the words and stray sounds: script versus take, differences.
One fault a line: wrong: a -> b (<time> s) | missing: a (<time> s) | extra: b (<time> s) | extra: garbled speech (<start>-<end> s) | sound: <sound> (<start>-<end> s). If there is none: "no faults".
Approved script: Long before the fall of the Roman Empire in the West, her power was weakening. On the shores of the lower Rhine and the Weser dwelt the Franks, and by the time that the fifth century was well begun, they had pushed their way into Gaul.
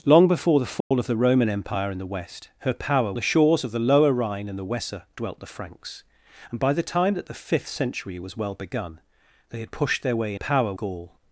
sound: dropout (0.8-0.9 s)
missing: was weakening On (3.1 s)
wrong: into -> power (10.3 s)